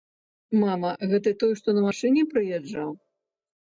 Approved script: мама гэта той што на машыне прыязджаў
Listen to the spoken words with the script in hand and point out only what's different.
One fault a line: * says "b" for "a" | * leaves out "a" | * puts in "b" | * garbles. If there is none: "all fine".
all fine